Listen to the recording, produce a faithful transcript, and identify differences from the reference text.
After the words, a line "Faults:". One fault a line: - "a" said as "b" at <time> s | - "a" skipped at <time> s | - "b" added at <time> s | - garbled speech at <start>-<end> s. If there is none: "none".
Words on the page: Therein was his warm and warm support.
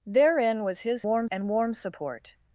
Therein was his warm and warm support.
Faults:
none